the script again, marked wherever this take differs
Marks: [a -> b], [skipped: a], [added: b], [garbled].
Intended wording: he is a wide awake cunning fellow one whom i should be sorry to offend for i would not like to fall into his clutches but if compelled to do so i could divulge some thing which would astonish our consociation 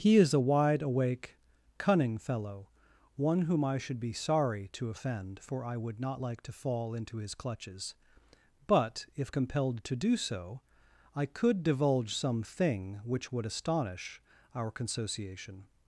he is a wide awake cunning fellow one whom i should be sorry to offend for i would not like to fall into his clutches but if compelled to do so i could divulge some thing which would astonish our consociation